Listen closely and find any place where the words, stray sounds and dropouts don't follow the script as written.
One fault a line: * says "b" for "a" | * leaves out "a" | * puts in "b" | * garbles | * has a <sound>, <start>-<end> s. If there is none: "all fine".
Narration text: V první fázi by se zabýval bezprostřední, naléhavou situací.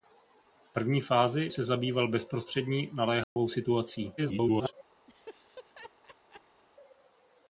* leaves out "by"
* has a dropout, 3.2-3.4 s
* garbles
* has a laugh, 5.1-6.6 s